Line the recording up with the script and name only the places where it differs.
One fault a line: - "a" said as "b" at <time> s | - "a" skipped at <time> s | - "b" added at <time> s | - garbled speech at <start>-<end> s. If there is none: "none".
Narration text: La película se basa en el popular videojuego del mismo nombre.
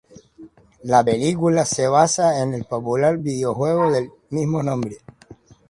none